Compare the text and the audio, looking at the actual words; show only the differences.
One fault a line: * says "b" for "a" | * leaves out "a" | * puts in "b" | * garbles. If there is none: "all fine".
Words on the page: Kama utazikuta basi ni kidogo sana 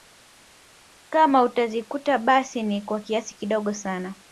* puts in "kwa kiasi"